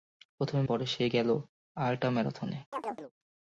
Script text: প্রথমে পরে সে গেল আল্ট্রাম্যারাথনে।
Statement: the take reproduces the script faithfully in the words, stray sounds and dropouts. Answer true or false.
false